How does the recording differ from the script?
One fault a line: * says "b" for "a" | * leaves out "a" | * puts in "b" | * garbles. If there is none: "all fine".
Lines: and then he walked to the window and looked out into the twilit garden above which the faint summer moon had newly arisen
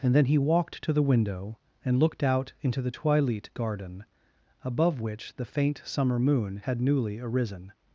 all fine